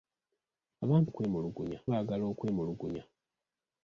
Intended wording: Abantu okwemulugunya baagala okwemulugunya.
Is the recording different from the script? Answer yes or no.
no